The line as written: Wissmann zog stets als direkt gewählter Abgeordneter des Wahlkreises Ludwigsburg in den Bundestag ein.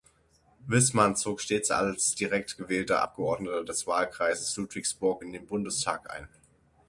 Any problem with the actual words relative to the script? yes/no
no